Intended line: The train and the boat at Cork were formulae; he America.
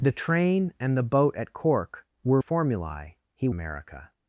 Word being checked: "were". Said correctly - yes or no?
yes